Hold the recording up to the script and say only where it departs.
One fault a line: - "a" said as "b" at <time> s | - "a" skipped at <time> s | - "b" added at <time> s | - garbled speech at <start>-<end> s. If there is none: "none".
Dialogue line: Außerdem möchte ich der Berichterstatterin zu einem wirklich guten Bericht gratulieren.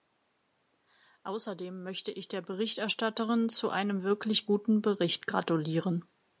none